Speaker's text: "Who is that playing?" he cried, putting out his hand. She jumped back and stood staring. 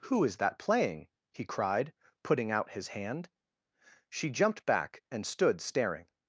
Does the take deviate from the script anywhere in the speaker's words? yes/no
no